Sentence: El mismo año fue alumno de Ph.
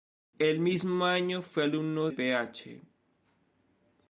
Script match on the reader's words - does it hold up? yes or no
no